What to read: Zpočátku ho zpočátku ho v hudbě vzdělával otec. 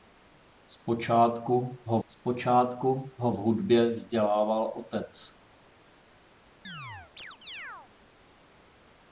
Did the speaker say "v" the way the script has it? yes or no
yes